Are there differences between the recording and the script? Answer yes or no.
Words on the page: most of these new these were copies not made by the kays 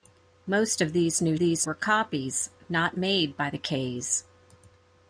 no